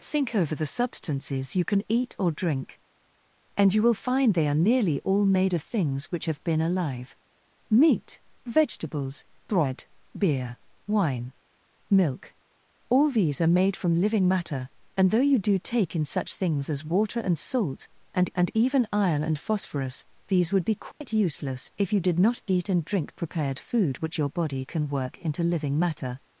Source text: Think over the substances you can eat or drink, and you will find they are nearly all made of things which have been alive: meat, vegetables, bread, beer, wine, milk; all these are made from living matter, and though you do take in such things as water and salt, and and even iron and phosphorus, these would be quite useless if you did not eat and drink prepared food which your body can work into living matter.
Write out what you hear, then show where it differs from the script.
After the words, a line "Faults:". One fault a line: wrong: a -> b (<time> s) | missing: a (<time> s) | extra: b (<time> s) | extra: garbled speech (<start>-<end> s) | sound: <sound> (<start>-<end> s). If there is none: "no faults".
Think over the substances you can eat or drink, and you will find they are nearly all made of things which have been alive: meat, vegetables, bread, beer, wine, milk; all these are made from living matter, and though you do take in such things as water and salt, and and even iron and phosphorus, these would be quite useless if you did not eat and drink prepared food which your body can work into living matter.
Faults:
sound: dropout (20.9-21.0 s)